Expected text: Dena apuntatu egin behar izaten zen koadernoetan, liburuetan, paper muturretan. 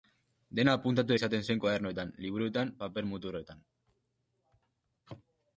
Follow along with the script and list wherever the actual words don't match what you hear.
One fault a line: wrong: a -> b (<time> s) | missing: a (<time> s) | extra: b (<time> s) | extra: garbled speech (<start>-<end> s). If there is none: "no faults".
missing: egin behar (1.1 s)